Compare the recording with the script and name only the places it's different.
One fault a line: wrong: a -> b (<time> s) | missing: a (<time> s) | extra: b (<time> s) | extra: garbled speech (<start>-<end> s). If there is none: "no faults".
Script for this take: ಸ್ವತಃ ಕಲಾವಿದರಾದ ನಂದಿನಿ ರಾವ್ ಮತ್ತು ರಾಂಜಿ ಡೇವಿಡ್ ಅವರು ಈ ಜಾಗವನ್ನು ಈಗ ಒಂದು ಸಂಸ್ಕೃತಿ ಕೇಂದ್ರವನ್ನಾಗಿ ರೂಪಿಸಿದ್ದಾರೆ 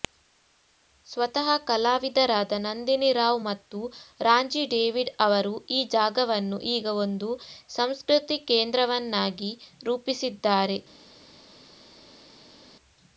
no faults